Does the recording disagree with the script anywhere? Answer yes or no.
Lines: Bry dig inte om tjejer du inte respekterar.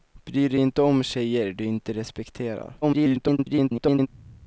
yes